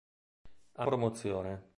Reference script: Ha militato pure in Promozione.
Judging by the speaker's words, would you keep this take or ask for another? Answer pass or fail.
fail